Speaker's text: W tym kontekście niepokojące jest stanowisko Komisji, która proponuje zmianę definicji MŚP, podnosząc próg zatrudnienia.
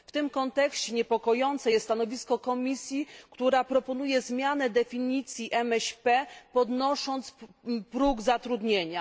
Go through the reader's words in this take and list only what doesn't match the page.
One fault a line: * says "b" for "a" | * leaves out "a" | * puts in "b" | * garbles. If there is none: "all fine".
all fine